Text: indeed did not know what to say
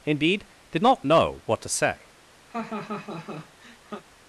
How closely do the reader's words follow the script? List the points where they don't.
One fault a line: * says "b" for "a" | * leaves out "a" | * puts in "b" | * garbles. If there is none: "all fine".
all fine